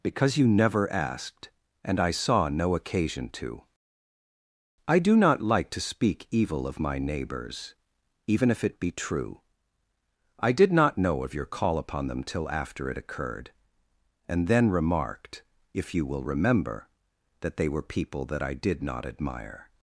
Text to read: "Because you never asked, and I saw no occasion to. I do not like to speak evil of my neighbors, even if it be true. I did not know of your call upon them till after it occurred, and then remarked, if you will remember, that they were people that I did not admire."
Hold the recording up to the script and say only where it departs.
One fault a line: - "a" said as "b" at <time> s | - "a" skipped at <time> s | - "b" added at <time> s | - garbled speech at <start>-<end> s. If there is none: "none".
none